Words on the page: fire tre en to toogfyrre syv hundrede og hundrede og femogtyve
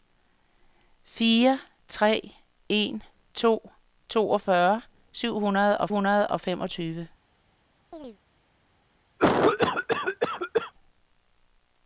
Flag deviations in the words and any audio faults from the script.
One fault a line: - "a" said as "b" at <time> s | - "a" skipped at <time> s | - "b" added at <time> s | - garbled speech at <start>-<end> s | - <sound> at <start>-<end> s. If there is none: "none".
- chirp at 7.9-8.2 s
- cough at 9.2-10.7 s